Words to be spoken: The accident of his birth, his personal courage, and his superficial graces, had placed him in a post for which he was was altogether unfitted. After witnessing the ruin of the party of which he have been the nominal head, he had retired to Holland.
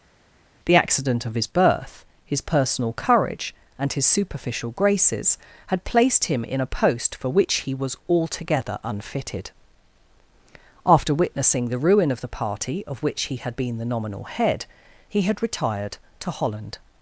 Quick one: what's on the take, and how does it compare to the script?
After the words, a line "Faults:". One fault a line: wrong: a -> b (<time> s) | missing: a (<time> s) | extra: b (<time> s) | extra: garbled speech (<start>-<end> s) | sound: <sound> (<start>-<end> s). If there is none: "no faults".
The accident of his birth, his personal courage, and his superficial graces, had placed him in a post for which he was altogether unfitted. After witnessing the ruin of the party of which he had been the nominal head, he had retired to Holland.
Faults:
missing: was (8.0 s)
wrong: have -> had (13.4 s)